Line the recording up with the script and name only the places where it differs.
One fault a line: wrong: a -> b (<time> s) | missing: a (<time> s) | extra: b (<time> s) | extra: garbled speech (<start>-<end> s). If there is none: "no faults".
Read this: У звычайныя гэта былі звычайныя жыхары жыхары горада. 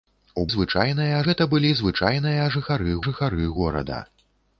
no faults